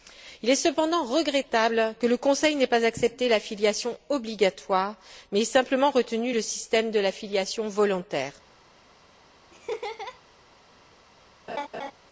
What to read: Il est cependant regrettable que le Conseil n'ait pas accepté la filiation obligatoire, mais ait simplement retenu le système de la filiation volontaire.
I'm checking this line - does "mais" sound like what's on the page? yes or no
yes